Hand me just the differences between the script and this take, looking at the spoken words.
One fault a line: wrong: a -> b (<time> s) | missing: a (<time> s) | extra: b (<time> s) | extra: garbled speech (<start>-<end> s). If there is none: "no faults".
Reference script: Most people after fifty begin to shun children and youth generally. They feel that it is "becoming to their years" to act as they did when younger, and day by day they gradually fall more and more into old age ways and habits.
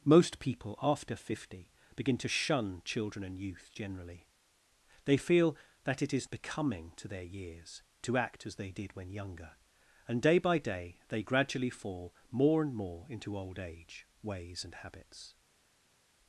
no faults